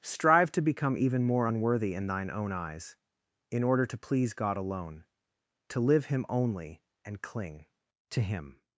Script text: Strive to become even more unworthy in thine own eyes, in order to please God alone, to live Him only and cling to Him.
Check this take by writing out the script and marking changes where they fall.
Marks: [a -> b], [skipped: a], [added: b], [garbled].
Strive to become even more unworthy in thine own eyes, in order to please God alone, to live Him only and cling to Him.